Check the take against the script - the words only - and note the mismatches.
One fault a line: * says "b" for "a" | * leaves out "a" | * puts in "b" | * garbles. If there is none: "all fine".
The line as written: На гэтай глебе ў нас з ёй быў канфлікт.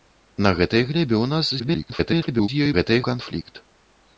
* garbles
* says "гэтай" for "быў"